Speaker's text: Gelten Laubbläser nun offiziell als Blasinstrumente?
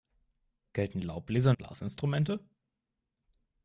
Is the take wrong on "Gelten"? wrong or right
right